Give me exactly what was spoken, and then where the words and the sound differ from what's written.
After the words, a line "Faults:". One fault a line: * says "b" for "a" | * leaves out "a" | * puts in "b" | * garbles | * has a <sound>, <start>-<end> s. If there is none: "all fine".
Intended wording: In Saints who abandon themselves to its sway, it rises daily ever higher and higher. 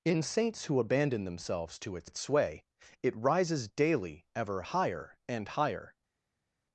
In Saints who abandon themselves to its its sway, it rises daily ever higher and higher.
Faults:
* puts in "its"